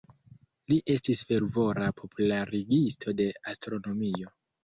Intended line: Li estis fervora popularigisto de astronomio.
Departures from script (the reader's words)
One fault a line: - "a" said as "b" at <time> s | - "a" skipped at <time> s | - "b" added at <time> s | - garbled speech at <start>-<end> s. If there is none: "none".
none